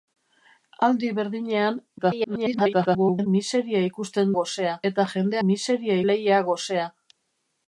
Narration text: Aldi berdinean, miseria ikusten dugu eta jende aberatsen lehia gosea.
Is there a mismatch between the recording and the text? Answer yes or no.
yes